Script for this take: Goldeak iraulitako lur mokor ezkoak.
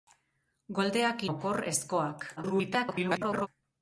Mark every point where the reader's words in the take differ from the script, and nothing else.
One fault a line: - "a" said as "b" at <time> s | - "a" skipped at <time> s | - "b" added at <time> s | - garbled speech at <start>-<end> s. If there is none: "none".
- "iraulitako lur" skipped at 1.2 s
- garbled speech at 2.4-3.5 s